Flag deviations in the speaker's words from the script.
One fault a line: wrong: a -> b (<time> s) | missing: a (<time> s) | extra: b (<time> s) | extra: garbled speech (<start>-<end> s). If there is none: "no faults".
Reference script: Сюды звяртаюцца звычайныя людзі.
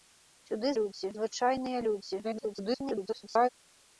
wrong: звяртаюцца -> людзі (0.8 s)
extra: garbled speech (2.2-3.5 s)